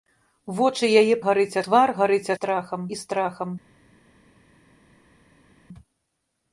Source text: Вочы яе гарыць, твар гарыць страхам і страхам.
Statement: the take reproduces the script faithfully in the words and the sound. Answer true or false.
true